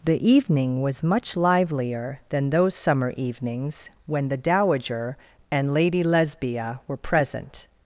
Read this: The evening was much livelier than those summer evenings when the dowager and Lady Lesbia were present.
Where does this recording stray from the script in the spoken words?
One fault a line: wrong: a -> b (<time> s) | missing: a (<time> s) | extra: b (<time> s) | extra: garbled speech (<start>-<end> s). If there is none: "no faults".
no faults